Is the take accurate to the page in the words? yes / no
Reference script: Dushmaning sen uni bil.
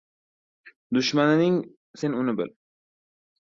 yes